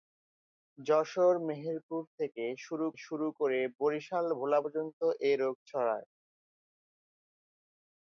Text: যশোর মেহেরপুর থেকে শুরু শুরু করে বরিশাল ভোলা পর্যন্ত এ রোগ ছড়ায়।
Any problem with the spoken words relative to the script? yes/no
no